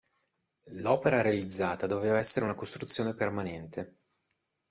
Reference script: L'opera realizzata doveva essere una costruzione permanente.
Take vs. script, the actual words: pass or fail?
pass